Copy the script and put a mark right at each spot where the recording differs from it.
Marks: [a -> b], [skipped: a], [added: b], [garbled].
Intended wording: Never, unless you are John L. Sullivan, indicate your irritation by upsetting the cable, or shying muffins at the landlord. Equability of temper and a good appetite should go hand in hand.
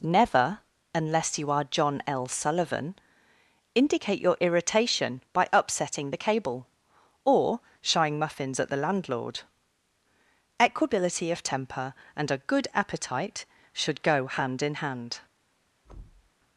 Never, unless you are John L. Sullivan, indicate your irritation by upsetting the cable, or shying muffins at the landlord. Equability of temper and a good appetite should go hand in hand.